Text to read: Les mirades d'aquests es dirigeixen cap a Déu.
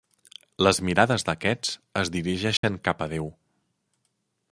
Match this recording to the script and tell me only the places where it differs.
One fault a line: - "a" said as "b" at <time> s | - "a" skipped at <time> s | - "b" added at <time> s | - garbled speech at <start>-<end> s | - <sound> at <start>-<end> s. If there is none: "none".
- dropout at 2.6-2.6 s